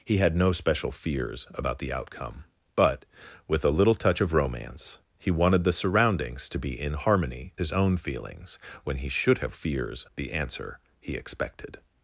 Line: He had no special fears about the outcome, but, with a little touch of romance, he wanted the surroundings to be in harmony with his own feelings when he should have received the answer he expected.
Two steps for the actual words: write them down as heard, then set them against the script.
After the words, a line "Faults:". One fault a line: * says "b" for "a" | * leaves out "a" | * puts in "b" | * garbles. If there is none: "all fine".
He had no special fears about the outcome, but, with a little touch of romance, he wanted the surroundings to be in harmony his own feelings when he should have fears the answer he expected.
Faults:
* leaves out "with"
* says "fears" for "received"